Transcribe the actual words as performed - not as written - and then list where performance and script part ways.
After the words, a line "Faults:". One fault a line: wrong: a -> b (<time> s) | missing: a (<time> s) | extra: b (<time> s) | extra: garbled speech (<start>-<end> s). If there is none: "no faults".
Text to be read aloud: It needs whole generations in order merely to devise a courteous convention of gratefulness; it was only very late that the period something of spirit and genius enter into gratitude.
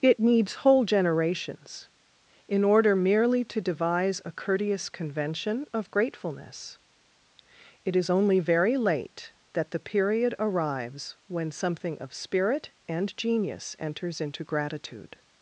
It needs whole generations in order merely to devise a courteous convention of gratefulness; it is only very late that the period arrives when something of spirit and genius enters into gratitude.
Faults:
wrong: was -> is (8.0 s)
extra: arrives when (10.4 s)
wrong: enter -> enters (13.8 s)